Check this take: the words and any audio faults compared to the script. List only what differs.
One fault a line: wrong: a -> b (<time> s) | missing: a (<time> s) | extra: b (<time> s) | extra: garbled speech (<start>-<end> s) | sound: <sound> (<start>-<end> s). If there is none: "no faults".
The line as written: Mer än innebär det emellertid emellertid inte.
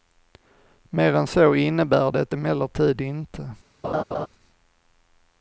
extra: så (1.3 s)
missing: emellertid (3.0 s)
sound: laugh (3.8-4.3 s)